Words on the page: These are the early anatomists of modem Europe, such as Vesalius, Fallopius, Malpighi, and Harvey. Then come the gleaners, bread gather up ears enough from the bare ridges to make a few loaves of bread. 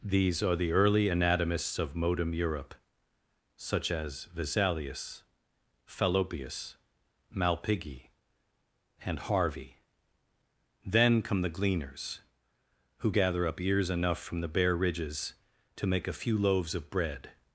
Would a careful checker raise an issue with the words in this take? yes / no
yes